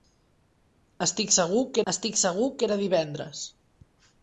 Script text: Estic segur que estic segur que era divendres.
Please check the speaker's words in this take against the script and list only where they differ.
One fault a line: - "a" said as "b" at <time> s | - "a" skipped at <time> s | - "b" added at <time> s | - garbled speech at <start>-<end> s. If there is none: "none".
none